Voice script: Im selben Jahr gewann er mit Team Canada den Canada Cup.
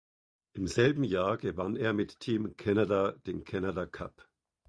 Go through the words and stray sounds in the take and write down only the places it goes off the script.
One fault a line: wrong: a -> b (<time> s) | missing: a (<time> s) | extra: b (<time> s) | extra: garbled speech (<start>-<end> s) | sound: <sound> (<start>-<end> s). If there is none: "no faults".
no faults